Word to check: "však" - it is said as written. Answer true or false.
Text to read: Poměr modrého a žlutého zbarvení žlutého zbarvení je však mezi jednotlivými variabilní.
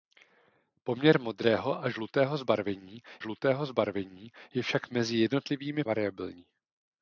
true